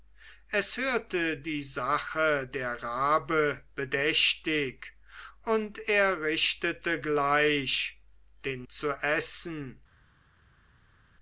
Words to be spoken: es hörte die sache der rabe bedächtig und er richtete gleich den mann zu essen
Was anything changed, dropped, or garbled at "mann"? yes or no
yes